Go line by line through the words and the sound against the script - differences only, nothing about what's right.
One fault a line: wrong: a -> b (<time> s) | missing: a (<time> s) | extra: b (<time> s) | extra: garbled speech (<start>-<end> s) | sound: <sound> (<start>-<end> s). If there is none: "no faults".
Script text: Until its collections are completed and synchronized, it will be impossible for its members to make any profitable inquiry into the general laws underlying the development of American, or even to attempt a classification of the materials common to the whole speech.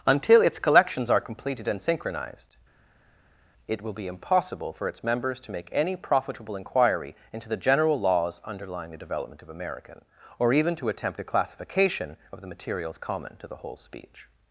no faults